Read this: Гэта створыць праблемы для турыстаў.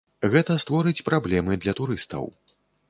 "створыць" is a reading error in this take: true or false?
false